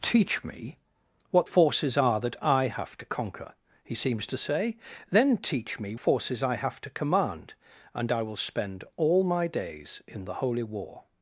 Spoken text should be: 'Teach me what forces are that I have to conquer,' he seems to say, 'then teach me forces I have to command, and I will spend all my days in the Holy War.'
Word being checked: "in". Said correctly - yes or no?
yes